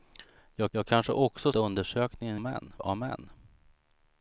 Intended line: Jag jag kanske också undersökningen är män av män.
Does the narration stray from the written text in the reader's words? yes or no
no